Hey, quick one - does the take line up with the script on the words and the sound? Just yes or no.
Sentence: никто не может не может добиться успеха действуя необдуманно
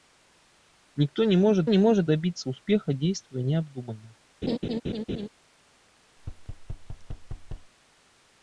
no